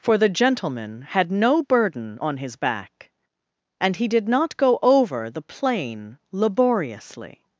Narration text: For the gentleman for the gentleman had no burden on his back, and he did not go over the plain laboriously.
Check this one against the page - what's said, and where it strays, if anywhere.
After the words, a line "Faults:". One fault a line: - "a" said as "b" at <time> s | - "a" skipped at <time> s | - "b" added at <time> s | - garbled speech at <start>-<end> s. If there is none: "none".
For the gentleman had no burden on his back, and he did not go over the plain laboriously.
Faults:
- "for the gentleman" skipped at 1.0 s